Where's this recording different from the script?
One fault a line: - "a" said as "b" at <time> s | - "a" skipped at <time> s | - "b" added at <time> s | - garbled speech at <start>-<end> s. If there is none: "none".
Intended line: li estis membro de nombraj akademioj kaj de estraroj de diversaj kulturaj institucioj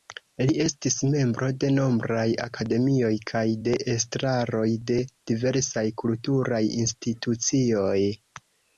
none